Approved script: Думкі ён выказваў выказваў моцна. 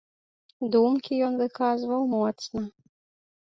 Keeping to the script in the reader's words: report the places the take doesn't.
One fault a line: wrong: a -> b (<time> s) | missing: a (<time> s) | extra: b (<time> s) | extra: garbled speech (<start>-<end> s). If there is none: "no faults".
missing: выказваў (2.0 s)